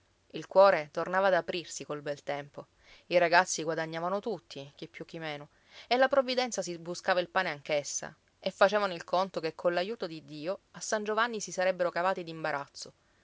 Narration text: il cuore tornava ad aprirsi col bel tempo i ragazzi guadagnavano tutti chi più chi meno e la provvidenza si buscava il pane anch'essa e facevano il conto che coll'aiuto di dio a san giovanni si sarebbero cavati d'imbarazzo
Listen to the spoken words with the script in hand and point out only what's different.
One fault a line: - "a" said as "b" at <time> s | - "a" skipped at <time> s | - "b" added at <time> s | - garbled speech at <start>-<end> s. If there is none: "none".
none